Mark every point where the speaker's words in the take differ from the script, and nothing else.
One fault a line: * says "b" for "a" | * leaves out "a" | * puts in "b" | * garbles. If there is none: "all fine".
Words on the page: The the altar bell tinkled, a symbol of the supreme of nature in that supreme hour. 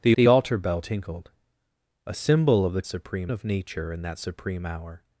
all fine